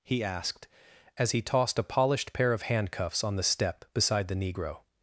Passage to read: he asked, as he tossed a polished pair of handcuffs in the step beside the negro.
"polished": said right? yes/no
yes